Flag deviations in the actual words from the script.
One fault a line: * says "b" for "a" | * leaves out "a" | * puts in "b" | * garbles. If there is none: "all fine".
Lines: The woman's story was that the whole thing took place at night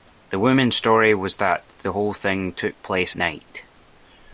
* leaves out "at"